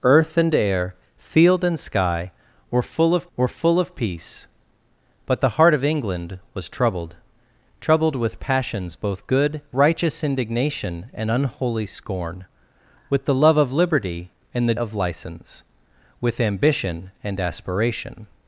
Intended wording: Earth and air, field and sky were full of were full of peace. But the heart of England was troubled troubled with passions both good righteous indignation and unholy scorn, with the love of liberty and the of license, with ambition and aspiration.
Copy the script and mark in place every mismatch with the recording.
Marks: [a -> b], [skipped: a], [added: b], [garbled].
Earth and air, field and sky were full of were full of peace. But the heart of England was troubled troubled with passions both good righteous indignation and unholy scorn, with the love of liberty and the of license, with ambition and aspiration.